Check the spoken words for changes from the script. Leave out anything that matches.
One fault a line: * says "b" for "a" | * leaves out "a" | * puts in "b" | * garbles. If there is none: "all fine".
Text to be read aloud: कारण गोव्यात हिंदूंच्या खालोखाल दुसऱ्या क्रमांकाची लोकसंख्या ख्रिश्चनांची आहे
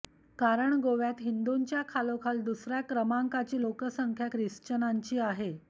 all fine